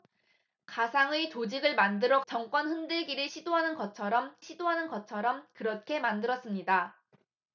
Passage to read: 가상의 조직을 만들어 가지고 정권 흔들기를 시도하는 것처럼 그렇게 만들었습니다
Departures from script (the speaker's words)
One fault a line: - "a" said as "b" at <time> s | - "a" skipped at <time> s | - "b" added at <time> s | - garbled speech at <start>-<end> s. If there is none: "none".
- "가지고" skipped at 2.2 s
- "시도하는 것처럼" added at 4.4 s